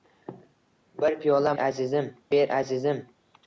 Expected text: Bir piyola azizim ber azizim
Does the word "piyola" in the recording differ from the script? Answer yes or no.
no